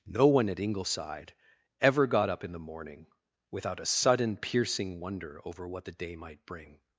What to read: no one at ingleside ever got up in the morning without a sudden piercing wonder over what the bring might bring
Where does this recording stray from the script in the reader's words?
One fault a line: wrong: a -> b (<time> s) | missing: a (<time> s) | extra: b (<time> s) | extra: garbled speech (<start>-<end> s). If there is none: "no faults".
wrong: bring -> day (5.9 s)